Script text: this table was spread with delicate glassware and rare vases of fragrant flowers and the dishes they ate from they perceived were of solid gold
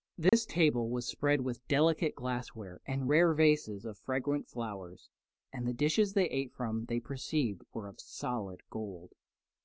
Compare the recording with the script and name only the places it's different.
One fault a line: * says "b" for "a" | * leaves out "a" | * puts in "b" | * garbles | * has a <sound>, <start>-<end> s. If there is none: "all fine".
* has a dropout, 0.3-0.3 s